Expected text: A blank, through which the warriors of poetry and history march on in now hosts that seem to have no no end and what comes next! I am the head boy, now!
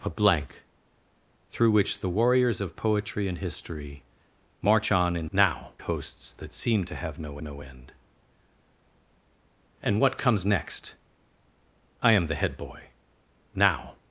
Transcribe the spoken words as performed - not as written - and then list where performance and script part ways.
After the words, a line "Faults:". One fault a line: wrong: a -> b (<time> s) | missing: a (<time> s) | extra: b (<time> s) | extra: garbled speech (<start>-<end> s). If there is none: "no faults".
A blank, through which the warriors of poetry and history march on in now hosts that seem to have no no end and what comes next! I am the head boy, now!
Faults:
no faults